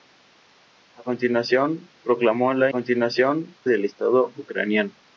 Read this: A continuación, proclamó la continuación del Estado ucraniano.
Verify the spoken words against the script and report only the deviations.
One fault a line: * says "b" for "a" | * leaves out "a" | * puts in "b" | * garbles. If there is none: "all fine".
all fine